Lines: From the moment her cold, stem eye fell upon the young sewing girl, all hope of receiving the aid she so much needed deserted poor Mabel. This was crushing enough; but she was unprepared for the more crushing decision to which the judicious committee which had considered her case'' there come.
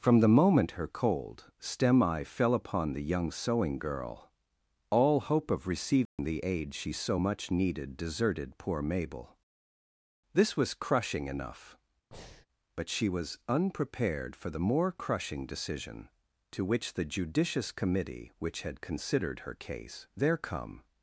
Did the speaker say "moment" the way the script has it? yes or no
yes